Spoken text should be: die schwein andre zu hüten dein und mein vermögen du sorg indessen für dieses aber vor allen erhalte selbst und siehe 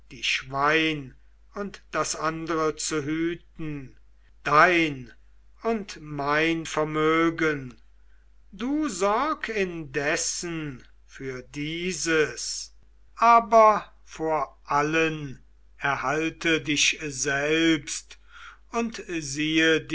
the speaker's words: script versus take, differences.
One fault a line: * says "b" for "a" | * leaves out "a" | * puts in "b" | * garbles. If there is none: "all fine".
* puts in "und das"
* puts in "dich"